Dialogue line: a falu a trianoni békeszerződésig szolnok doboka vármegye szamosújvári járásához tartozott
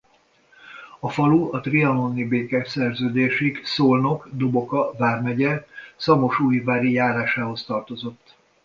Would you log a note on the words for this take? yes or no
no